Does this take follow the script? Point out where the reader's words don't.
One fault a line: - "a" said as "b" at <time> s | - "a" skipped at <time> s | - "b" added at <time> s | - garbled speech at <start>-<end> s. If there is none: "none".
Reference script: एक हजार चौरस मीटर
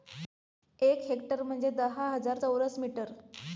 - "हेक्टर म्हणजे दहा" added at 1.0 s